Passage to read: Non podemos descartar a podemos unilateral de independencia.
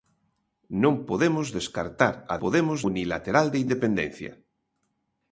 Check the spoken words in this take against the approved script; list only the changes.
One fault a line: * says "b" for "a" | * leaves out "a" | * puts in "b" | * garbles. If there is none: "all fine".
all fine